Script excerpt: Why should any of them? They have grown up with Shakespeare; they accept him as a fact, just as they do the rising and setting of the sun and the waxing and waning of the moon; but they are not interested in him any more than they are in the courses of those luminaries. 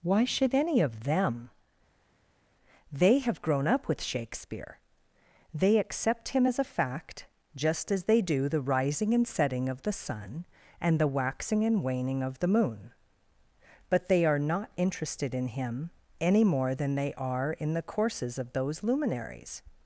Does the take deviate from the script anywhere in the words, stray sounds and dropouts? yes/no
no